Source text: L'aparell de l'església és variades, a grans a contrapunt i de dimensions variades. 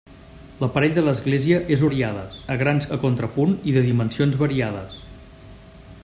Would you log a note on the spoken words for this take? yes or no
no